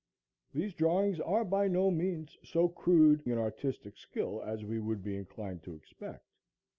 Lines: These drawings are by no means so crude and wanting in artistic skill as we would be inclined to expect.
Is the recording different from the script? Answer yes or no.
yes